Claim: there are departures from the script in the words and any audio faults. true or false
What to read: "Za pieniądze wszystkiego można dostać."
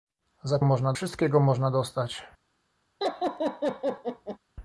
true